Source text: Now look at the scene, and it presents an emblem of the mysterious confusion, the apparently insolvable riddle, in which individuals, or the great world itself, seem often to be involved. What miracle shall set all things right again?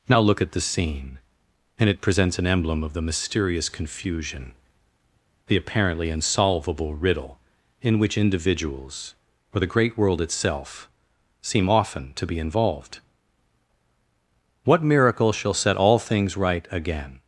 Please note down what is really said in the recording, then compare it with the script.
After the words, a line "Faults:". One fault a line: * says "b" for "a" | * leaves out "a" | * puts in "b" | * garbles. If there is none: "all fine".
Now look at the scene, and it presents an emblem of the mysterious confusion, the apparently insolvable riddle, in which individuals, or the great world itself, seem often to be involved. What miracle shall set all things right again?
Faults:
all fine